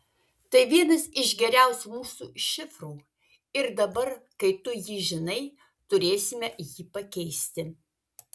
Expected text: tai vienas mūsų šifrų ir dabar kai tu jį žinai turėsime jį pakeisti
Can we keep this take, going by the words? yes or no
no